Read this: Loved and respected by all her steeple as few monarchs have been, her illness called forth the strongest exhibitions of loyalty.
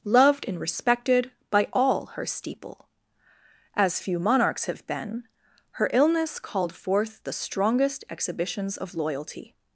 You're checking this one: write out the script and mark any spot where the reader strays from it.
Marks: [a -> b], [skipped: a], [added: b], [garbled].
Loved and respected by all her steeple as few monarchs have been, her illness called forth the strongest exhibitions of loyalty.